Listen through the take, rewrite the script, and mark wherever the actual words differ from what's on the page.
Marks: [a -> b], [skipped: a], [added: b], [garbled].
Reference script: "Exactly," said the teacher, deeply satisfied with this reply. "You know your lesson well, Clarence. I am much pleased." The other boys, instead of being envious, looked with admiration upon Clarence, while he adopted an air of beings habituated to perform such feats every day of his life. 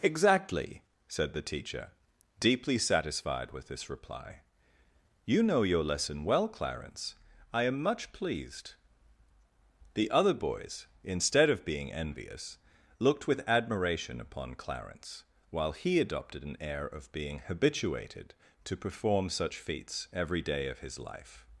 "Exactly," said the teacher, deeply satisfied with this reply. "You know your lesson well, Clarence. I am much pleased." The other boys, instead of being envious, looked with admiration upon Clarence, while he adopted an air of [beings -> being] habituated to perform such feats every day of his life.